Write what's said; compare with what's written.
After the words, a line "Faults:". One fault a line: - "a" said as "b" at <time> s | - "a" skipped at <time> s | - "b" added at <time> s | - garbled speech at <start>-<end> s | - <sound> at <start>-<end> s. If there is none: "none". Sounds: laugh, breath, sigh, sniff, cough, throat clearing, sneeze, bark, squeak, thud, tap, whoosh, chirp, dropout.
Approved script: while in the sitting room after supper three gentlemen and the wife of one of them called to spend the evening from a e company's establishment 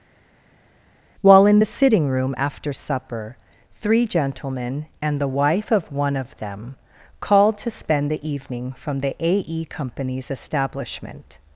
while in the sitting room after supper three gentlemen and the wife of one of them called to spend the evening from the a e company's establishment
Faults:
- "the" added at 9.0 s